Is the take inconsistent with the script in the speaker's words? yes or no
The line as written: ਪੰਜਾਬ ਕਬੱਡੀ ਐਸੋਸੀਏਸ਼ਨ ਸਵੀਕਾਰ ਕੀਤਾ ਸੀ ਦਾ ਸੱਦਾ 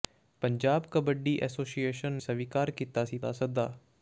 no